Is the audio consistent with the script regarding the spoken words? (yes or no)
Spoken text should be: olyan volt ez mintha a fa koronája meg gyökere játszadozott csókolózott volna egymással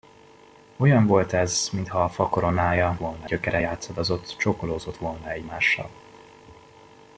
no